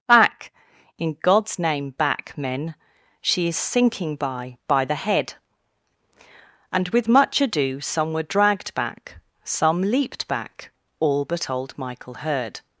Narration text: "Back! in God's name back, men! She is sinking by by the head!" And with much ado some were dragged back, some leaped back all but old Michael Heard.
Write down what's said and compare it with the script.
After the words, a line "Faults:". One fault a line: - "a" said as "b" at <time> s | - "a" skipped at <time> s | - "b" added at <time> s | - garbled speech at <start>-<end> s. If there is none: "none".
"Back! in God's name back, men! She is sinking by by the head!" And with much ado some were dragged back, some leaped back all but old Michael Heard.
Faults:
none